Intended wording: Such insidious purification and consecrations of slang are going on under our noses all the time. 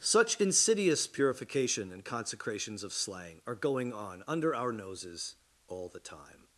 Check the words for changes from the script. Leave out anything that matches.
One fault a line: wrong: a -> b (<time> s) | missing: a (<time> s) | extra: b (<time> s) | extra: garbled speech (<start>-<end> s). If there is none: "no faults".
no faults